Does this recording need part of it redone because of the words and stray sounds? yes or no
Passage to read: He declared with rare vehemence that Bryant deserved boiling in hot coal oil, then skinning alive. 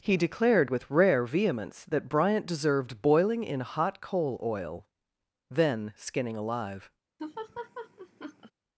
yes